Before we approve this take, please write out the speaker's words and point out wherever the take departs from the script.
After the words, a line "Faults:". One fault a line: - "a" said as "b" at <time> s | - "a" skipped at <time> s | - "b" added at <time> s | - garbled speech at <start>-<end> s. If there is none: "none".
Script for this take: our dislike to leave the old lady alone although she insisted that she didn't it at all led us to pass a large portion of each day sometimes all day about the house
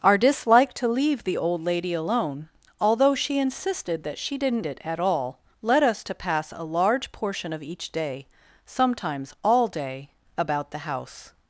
our dislike to leave the old lady alone although she insisted that she didn't it at all led us to pass a large portion of each day sometimes all day about the house
Faults:
none